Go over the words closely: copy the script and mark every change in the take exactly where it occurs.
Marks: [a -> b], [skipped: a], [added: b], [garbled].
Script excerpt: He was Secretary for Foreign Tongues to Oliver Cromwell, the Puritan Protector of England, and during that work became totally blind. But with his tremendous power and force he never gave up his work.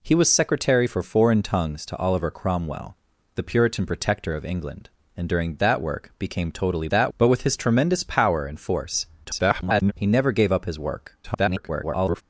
He was Secretary for Foreign Tongues to Oliver Cromwell, the Puritan Protector of England, and during that work became totally [blind. -> that] But with his tremendous power and force [garbled] he never gave up his work. [garbled]